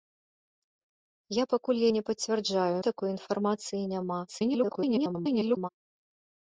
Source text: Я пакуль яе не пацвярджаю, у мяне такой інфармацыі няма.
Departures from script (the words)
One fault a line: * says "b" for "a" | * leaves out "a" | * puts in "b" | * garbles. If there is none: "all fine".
* leaves out "яе"
* leaves out "мяне"
* garbles